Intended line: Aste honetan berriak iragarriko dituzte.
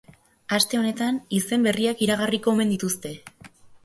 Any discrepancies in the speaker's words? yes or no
yes